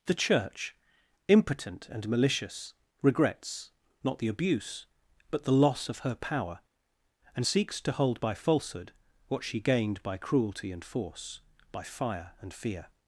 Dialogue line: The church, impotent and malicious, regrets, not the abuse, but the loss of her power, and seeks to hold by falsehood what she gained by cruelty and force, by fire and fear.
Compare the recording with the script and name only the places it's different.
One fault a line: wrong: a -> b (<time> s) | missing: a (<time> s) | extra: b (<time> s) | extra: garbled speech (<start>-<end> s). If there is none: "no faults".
no faults